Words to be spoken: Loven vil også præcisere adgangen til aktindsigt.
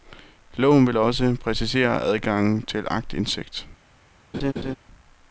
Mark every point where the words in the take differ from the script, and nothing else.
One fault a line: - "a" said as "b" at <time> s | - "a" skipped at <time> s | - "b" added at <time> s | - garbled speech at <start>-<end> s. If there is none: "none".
none